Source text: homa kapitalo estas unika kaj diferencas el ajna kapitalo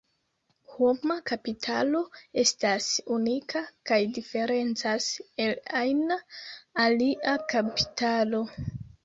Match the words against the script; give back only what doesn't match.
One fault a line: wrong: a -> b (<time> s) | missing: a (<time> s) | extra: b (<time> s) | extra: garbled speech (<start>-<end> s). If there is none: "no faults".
extra: alia (6.9 s)